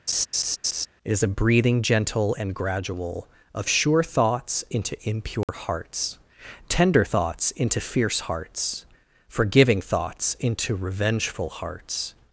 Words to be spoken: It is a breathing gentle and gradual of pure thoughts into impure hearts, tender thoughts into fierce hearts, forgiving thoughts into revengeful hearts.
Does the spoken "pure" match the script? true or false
false